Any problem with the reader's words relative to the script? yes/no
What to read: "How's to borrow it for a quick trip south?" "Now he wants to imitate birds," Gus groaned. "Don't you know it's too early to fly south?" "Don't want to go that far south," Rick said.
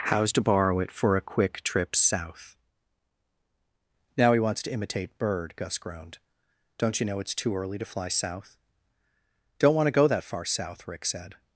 yes